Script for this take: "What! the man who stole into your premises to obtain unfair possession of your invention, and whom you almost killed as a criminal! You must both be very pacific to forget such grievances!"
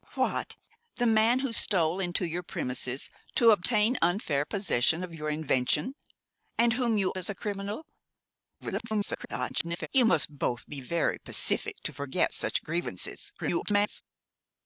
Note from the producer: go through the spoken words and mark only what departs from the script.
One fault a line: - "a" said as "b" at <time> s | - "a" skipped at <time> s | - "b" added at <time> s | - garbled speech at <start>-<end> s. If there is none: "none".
- "almost killed" skipped at 7.1 s
- garbled speech at 8.6-9.9 s
- garbled speech at 13.4-14.0 s